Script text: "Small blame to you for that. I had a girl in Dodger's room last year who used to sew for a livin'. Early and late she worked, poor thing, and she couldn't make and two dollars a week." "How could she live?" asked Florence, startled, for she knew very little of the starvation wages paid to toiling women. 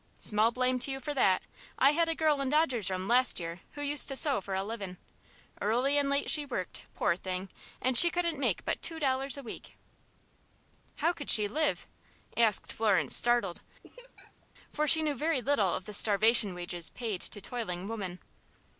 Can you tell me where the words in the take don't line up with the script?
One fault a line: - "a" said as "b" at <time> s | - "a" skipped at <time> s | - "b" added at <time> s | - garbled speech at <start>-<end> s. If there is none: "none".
- "and" said as "but" at 8.7 s